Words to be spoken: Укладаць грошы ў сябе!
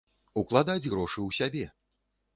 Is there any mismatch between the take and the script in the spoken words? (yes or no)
no